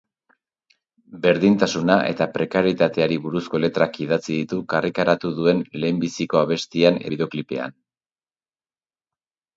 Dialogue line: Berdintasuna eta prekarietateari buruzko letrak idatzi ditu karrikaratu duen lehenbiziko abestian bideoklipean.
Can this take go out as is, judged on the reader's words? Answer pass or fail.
pass